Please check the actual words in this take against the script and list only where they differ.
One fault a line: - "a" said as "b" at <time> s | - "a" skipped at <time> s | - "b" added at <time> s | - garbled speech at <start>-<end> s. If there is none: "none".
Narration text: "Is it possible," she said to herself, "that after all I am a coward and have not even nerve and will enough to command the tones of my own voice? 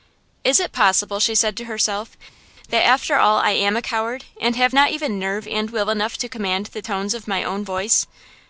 none